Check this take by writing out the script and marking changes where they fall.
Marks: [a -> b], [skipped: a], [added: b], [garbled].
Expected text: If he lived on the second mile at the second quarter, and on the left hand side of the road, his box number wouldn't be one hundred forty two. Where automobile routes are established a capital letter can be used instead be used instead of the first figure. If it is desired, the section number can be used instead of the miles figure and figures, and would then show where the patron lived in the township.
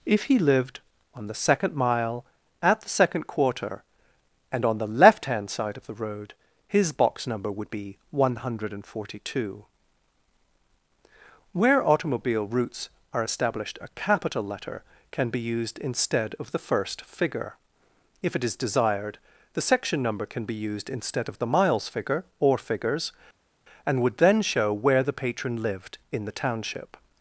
If he lived on the second mile at the second quarter, and on the left hand side of the road, his box number [wouldn't -> would] be one hundred forty two. Where automobile routes are established a capital letter can be used instead [skipped: be used instead] of the first figure. If it is desired, the section number can be used instead of the miles figure [and -> or] figures, and would then show where the patron lived in the township.